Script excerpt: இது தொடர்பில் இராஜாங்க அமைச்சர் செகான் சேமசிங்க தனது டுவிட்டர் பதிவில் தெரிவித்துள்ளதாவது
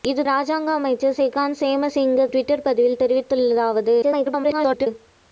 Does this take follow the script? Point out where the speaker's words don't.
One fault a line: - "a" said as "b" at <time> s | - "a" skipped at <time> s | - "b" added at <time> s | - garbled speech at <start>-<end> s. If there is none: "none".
- "தொடர்பில்" skipped at 0.2 s
- "தனது" skipped at 2.3 s
- garbled speech at 4.0-4.9 s